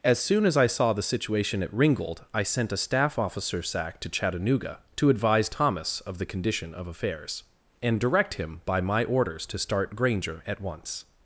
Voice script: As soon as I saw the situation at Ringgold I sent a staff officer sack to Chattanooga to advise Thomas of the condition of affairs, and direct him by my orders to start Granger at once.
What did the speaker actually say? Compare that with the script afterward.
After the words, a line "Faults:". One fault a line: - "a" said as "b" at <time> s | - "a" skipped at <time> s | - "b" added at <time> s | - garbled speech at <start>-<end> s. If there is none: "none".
As soon as I saw the situation at Ringgold I sent a staff officer sack to Chattanooga to advise Thomas of the condition of affairs, and direct him by my orders to start Granger at once.
Faults:
none